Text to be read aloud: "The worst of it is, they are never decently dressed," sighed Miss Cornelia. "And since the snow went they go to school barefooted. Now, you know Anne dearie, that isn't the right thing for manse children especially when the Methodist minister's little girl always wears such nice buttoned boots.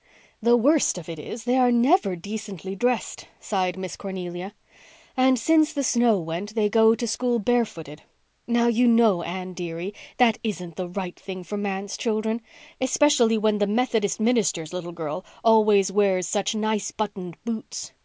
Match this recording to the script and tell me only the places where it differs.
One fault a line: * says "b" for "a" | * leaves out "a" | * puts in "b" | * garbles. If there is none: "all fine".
all fine